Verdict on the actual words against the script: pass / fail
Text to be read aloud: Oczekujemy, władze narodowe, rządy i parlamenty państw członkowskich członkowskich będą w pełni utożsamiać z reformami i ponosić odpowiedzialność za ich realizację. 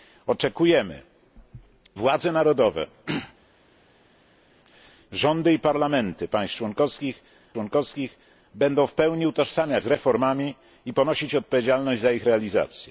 pass